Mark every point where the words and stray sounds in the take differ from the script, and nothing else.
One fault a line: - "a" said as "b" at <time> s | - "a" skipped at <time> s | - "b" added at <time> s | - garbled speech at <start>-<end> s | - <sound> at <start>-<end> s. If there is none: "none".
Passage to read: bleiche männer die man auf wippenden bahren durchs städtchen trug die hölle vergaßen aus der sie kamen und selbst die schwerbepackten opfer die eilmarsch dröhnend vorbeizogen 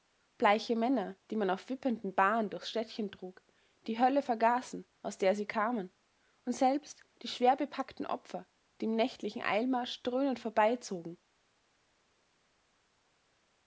- "im nächtlichen" added at 8.8 s